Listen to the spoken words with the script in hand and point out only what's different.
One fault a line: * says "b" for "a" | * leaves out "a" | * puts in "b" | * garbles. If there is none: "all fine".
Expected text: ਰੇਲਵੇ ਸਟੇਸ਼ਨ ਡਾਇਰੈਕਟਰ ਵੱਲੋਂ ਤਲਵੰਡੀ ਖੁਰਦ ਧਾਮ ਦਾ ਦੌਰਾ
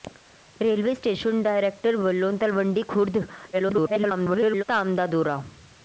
* garbles